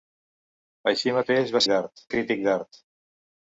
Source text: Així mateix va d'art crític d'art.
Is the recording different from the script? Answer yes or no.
no